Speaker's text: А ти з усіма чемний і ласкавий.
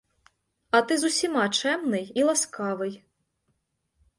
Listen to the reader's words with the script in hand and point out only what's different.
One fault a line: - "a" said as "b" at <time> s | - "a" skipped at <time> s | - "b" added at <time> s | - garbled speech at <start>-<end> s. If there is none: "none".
none